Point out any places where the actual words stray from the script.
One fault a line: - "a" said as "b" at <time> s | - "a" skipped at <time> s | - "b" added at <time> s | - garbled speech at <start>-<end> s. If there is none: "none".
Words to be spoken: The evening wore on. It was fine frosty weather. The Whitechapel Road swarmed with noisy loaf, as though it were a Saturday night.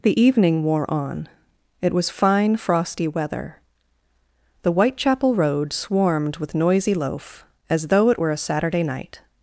none